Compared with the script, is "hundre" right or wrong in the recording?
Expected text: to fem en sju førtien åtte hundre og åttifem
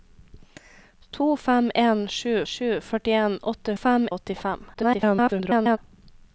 wrong